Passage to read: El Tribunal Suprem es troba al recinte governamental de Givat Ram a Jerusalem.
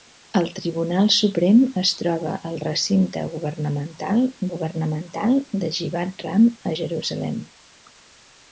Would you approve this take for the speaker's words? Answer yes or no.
no